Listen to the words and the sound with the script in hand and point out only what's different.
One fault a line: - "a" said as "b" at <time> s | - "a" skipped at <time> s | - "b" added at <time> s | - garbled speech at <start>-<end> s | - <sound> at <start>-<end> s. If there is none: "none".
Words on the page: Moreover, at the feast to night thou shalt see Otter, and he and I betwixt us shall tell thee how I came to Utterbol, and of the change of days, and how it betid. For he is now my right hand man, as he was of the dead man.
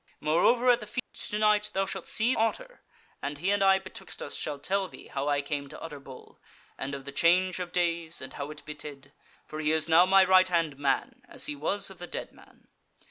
- dropout at 1.0-1.1 s